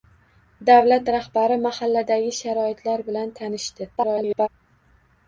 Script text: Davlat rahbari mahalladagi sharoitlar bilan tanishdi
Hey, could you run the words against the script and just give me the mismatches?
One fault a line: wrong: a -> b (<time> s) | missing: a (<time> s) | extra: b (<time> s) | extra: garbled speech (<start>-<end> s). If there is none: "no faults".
extra: garbled speech (4.0-4.5 s)